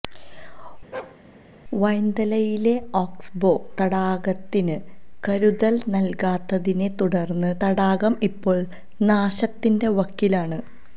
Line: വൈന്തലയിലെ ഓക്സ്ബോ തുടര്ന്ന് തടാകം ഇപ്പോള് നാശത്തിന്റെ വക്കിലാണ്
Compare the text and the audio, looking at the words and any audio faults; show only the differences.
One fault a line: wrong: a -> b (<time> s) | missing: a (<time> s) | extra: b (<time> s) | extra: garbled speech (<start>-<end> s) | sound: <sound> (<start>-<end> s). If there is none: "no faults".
sound: bark (0.9-1.2 s)
extra: തടാകത്തിന് കരുതല് നല്കാത്തതിനെ (3.8 s)